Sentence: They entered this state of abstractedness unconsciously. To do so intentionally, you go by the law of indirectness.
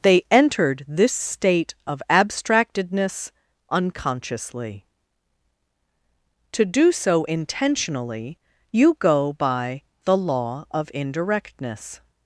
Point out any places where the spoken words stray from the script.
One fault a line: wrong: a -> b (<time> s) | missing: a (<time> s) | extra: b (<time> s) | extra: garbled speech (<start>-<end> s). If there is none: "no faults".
no faults